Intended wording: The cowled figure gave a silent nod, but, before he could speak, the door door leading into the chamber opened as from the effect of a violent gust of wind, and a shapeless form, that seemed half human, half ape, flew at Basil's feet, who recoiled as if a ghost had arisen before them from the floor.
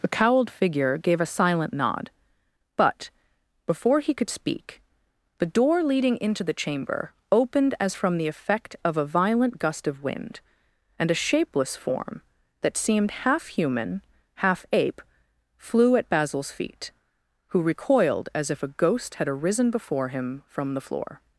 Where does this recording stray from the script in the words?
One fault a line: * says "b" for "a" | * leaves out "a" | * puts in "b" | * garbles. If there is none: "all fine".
* leaves out "door"
* says "him" for "them"